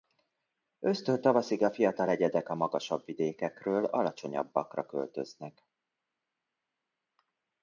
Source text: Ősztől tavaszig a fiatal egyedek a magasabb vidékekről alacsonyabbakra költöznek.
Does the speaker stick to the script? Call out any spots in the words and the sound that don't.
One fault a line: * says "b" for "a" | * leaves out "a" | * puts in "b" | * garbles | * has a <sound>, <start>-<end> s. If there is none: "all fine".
all fine